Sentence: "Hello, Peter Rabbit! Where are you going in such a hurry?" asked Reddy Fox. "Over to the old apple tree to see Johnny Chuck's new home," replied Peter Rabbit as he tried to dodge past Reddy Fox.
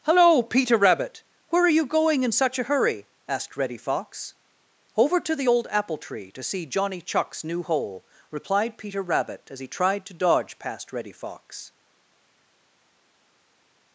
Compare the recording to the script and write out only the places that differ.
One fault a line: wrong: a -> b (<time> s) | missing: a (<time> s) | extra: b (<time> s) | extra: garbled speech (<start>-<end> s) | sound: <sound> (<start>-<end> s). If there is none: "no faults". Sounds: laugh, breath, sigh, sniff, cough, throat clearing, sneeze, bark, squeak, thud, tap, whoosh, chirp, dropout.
wrong: home -> hole (7.6 s)